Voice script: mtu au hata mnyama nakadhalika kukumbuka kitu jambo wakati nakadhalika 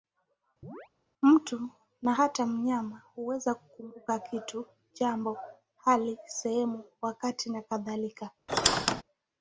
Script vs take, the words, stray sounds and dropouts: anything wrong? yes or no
yes